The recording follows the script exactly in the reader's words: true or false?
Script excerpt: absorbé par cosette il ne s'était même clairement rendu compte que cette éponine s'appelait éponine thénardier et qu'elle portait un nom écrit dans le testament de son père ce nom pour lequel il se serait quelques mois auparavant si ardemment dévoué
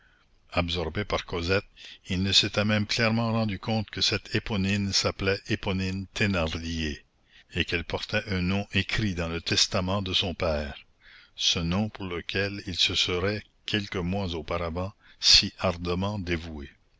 true